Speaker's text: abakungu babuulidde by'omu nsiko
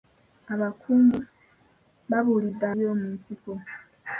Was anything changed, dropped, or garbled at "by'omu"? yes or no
no